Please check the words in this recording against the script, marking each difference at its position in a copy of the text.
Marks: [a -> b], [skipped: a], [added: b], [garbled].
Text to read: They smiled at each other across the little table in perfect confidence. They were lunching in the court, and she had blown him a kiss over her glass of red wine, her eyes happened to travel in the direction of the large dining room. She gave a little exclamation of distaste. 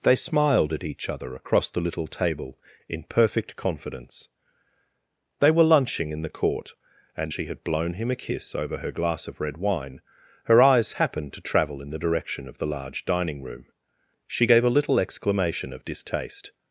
They smiled at each other across the little table in perfect confidence. They were lunching in the court, and she had blown him a kiss over her glass of red wine, her eyes happened to travel in the direction of the large dining room. She gave a little exclamation of distaste.